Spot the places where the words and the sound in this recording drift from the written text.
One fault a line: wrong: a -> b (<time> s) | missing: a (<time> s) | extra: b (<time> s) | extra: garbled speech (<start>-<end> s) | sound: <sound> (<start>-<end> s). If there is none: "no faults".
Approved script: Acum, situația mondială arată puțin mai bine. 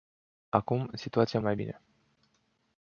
missing: mondială arată puțin (1.4 s)